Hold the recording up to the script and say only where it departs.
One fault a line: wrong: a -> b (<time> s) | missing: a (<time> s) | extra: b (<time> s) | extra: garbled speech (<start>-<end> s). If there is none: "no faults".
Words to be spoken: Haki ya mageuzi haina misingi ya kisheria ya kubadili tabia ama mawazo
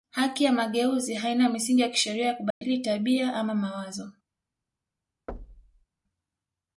no faults